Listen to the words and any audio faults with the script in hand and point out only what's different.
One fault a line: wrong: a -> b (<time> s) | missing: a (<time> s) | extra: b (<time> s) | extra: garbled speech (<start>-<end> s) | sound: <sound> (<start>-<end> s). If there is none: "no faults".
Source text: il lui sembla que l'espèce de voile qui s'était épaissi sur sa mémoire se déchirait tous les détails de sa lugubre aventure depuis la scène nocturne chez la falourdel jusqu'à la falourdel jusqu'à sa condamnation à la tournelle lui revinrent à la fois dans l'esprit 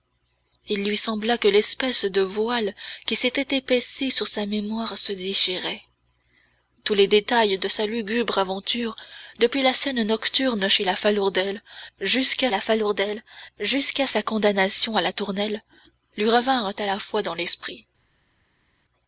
no faults